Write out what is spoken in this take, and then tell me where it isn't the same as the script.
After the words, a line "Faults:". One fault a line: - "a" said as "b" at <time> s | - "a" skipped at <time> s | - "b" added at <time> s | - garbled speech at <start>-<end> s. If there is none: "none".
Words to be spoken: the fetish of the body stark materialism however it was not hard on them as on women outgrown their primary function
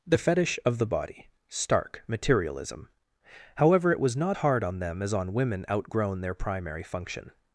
the fetish of the body stark materialism however it was not hard on them as on women outgrown their primary function
Faults:
none